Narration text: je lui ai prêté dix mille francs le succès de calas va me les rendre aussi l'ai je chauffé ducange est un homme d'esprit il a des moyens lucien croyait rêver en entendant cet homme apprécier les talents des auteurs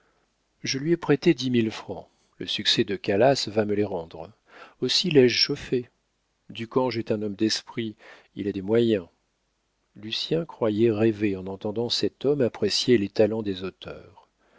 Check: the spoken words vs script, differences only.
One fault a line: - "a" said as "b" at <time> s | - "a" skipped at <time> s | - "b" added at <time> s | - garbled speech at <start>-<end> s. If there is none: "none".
none